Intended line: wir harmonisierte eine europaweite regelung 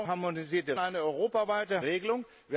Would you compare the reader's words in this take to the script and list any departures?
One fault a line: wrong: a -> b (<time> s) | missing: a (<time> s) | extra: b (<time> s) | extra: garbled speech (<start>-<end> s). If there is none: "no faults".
no faults